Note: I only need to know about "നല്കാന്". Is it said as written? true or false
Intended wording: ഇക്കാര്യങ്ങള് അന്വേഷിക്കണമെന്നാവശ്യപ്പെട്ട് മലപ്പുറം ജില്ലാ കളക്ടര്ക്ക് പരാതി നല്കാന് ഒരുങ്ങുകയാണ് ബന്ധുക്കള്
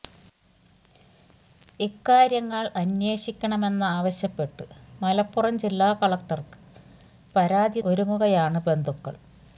false